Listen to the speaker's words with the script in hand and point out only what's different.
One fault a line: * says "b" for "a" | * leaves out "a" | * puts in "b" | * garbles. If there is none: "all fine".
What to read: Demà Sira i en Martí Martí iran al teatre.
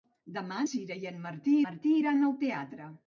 all fine